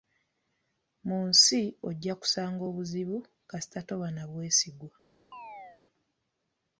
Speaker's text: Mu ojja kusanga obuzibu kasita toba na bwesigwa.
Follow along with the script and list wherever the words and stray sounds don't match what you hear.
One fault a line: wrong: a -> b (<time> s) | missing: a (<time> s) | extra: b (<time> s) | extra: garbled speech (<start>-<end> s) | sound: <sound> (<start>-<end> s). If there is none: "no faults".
extra: nsi (1.3 s)
sound: chirp (5.3-5.8 s)